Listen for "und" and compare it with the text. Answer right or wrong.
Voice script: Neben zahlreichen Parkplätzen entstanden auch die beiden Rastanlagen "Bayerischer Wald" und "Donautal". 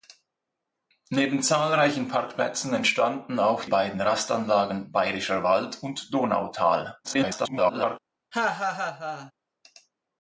right